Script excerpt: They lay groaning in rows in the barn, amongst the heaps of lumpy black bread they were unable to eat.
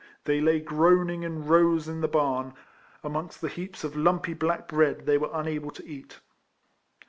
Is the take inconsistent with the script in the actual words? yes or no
no